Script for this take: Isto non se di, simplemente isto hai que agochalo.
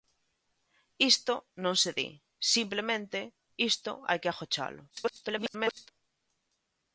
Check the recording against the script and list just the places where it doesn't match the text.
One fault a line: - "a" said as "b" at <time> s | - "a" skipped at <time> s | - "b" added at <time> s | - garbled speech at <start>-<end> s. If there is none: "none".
- garbled speech at 4.9-5.9 s